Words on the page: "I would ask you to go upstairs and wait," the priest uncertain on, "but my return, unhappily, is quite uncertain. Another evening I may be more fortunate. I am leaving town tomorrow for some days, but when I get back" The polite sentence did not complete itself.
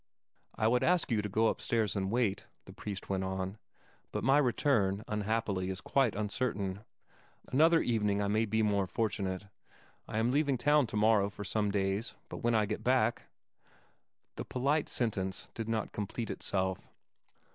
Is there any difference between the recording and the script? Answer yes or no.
yes